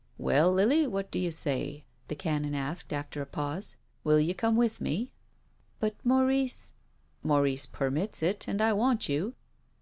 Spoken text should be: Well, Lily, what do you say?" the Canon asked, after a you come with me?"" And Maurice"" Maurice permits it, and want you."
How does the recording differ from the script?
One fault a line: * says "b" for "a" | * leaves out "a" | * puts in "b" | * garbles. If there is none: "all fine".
* puts in "pause Will"
* says "But" for "And"
* puts in "I"